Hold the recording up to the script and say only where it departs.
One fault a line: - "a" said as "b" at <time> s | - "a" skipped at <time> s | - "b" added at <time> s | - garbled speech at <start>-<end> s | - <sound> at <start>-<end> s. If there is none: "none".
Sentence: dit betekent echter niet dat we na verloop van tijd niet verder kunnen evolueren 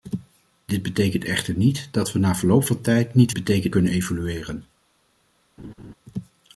- "verder" said as "betekent" at 3.3 s
- laugh at 5.6-5.9 s